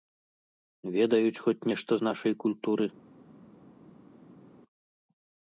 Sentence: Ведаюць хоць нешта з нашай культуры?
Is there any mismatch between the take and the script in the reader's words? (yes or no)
no